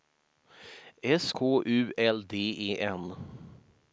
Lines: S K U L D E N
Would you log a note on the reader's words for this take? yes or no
no